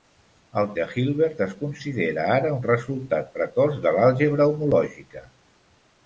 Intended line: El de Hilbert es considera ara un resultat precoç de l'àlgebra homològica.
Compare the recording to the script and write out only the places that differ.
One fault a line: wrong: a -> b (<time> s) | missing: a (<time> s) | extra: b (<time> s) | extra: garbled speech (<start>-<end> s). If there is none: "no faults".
no faults